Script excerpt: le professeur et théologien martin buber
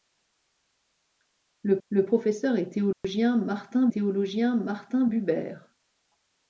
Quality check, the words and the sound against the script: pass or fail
fail